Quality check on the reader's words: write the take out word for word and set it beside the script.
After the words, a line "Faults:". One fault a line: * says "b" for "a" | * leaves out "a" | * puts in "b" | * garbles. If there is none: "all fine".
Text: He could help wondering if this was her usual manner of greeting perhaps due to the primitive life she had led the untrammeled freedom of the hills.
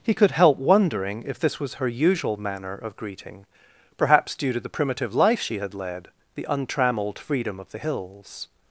He could help wondering if this was her usual manner of greeting perhaps due to the primitive life she had led the untrammeled freedom of the hills.
Faults:
all fine